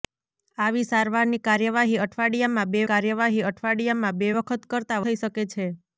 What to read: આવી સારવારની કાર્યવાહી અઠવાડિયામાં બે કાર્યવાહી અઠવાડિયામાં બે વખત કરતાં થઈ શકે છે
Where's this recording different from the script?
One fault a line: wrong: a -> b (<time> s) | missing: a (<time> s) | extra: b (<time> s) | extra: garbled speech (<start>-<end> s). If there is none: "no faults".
no faults